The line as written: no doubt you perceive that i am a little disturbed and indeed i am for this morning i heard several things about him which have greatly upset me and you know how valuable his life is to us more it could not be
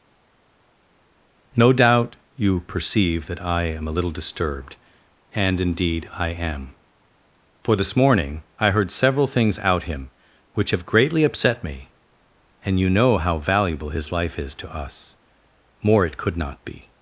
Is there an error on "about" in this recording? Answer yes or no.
yes